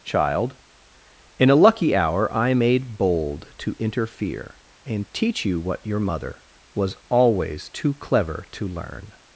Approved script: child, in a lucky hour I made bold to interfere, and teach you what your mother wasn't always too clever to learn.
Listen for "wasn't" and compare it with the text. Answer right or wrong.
wrong